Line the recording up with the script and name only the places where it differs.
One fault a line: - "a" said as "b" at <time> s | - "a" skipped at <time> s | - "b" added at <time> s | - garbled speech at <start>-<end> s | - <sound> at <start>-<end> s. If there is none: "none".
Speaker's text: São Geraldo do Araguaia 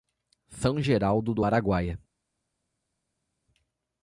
none